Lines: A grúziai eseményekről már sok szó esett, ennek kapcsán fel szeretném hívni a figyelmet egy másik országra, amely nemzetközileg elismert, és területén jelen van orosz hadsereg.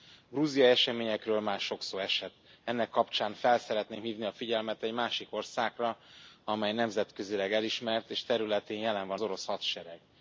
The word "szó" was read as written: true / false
true